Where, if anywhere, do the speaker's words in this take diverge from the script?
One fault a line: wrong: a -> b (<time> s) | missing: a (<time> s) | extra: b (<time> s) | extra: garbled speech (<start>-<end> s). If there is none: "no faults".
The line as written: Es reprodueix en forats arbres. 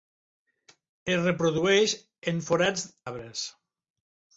no faults